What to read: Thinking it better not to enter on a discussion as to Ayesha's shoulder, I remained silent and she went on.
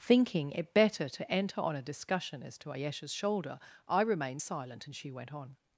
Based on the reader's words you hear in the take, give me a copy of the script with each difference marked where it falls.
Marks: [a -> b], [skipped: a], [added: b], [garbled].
Thinking it better [skipped: not] to enter on a discussion as to Ayesha's shoulder, I remained silent and she went on.